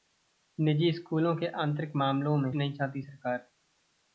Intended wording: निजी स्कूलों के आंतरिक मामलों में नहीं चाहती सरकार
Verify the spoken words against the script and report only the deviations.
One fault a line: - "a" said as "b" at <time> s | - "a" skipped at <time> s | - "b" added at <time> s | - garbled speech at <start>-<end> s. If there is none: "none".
none